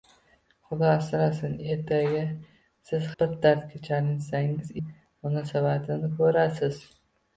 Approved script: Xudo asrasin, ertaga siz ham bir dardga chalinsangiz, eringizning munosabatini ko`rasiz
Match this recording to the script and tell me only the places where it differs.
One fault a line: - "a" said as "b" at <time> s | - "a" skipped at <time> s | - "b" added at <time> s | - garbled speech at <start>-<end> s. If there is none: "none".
- "ham" skipped at 3.0 s
- "eringizning" skipped at 4.7 s